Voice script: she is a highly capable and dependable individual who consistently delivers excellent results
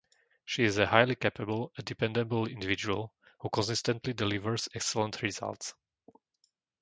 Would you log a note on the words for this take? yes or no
no